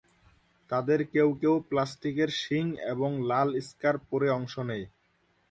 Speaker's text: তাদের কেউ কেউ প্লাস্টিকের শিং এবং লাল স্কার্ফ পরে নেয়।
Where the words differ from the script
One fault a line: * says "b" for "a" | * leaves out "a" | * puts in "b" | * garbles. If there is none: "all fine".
* puts in "অংশ"